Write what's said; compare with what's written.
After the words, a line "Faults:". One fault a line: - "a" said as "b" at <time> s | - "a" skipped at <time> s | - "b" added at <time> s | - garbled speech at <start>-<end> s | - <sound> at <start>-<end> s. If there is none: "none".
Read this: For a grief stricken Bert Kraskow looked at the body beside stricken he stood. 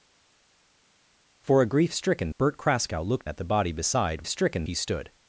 For a grief stricken Bert Kraskow looked at the body beside stricken he stood.
Faults:
none